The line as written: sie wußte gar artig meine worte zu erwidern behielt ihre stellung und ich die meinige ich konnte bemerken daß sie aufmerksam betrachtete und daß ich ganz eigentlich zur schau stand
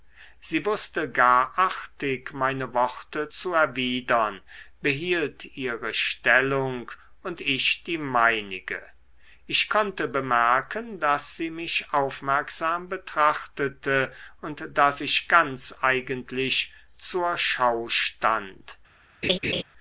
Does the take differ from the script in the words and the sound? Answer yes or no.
yes